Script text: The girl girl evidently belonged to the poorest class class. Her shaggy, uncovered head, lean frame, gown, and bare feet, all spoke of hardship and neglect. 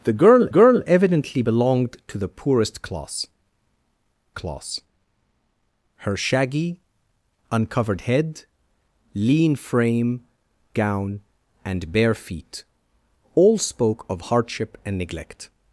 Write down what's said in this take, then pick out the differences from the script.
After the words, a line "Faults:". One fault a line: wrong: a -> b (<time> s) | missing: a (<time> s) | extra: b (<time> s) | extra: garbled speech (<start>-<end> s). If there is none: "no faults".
The girl girl evidently belonged to the poorest class class. Her shaggy, uncovered head, lean frame, gown, and bare feet, all spoke of hardship and neglect.
Faults:
no faults